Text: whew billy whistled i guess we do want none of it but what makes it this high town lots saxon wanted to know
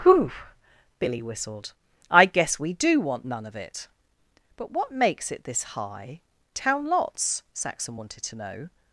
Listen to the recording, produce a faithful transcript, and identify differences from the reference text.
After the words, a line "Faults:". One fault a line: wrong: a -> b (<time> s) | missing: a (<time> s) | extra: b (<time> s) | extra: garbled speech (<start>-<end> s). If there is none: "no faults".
whew billy whistled i guess we do want none of it but what makes it this high town lots saxon wanted to know
Faults:
no faults